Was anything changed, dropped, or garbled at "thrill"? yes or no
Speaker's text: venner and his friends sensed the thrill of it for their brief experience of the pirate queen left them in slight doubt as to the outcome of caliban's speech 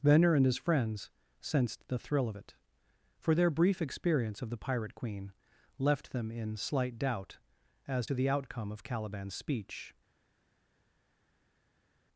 no